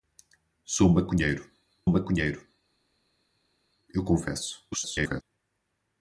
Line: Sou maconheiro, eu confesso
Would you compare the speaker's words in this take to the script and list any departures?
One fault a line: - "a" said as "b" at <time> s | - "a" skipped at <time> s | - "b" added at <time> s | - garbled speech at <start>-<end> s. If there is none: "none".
- "maconheiro" added at 1.9 s
- garbled speech at 4.7-5.2 s